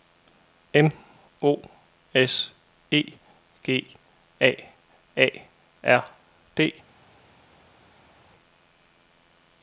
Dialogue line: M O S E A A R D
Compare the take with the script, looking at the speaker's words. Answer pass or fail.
fail